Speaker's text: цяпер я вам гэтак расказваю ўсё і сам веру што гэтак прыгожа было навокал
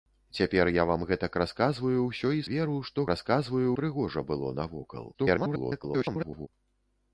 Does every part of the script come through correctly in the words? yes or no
no